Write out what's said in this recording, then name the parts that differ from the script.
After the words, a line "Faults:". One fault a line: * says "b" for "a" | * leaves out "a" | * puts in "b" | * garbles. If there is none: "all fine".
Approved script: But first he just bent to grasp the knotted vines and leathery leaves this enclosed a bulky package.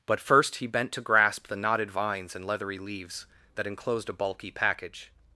But first he bent to grasp the knotted vines and leathery leaves that enclosed a bulky package.
Faults:
* leaves out "just"
* says "that" for "this"